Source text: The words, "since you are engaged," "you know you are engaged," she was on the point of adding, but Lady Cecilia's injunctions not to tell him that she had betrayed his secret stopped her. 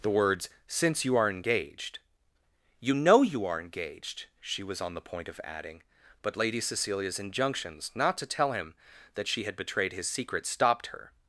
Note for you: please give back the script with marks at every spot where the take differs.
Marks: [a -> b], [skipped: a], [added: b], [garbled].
The words, "since you are engaged," "you know you are engaged," she was on the point of adding, but Lady Cecilia's injunctions not to tell him that she had betrayed his secret stopped her.